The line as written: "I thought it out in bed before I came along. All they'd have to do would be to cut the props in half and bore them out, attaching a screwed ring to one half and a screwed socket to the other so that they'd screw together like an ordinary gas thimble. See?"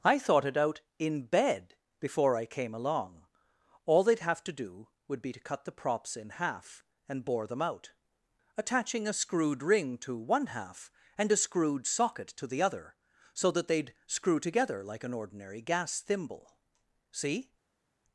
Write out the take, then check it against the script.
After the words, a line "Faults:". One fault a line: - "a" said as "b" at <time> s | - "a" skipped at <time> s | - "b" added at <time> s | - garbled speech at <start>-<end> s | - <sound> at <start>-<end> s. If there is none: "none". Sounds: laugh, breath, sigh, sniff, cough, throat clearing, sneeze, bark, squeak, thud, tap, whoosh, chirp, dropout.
"I thought it out in bed before I came along. All they'd have to do would be to cut the props in half and bore them out, attaching a screwed ring to one half and a screwed socket to the other so that they'd screw together like an ordinary gas thimble. See?"
Faults:
none